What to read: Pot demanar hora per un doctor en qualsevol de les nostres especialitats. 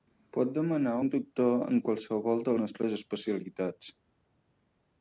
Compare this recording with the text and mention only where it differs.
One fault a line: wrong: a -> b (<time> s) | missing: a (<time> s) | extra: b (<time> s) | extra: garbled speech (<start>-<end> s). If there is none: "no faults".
missing: hora per (0.9 s)
missing: les (2.6 s)